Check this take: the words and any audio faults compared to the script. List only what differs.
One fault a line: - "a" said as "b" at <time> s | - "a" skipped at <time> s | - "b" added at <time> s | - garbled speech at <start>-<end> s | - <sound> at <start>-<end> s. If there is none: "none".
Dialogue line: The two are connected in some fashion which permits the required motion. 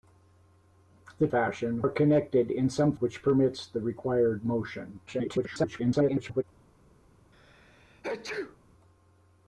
- "two" said as "fashion" at 1.3 s
- "fashion" skipped at 2.9 s
- garbled speech at 5.1-6.4 s
- sneeze at 7.3-8.6 s